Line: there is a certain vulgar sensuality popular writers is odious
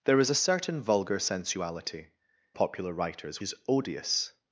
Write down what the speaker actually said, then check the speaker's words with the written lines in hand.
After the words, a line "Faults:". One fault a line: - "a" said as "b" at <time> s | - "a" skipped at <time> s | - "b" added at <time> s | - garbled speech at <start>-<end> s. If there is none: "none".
there is a certain vulgar sensuality popular writers is odious
Faults:
none